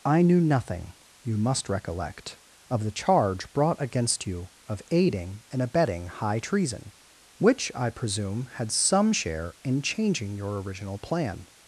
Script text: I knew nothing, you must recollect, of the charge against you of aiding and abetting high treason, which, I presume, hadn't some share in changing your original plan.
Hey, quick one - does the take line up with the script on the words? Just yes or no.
no